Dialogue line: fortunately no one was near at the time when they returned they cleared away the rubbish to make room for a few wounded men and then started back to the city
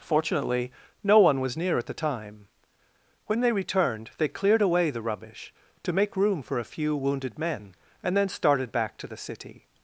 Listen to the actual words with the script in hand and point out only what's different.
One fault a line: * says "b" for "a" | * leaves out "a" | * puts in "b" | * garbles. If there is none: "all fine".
all fine